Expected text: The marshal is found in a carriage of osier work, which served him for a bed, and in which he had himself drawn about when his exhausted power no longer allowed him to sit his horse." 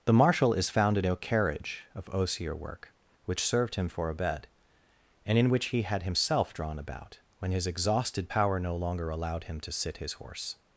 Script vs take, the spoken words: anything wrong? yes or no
no